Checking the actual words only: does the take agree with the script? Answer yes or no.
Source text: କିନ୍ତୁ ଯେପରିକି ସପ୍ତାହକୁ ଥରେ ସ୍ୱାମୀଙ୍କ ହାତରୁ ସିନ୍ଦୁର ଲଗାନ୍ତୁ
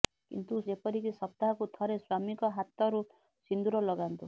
yes